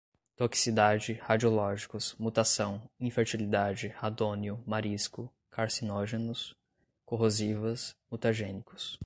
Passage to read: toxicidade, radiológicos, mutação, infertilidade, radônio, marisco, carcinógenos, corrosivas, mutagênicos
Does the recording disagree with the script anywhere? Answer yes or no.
no